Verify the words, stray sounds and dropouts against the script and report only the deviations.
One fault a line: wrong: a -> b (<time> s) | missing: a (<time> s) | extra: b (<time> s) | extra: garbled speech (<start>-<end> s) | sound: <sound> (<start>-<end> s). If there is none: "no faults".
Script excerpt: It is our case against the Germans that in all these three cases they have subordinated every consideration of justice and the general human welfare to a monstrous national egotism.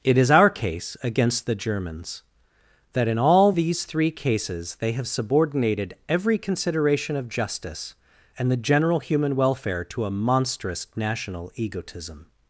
no faults